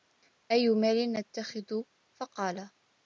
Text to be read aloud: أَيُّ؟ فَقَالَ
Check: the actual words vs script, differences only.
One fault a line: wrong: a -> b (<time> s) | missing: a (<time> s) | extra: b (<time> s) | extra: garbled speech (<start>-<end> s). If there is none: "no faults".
extra: مَالٍ نَتَّخِذُ (0.7 s)